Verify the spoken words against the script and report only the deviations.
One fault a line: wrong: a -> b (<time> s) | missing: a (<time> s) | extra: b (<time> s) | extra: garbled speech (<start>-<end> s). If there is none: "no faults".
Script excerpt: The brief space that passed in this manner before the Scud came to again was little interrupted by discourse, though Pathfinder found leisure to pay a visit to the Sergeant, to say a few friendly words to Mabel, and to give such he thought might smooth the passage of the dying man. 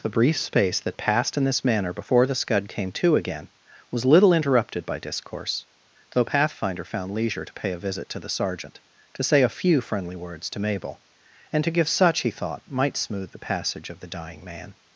no faults